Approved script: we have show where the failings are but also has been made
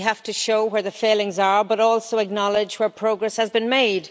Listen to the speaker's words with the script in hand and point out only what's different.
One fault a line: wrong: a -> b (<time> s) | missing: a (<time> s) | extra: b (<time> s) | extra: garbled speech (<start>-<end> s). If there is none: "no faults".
extra: to (0.2 s)
extra: acknowledge where progress (2.2 s)